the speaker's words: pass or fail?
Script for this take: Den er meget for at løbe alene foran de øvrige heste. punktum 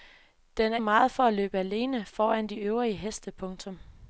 pass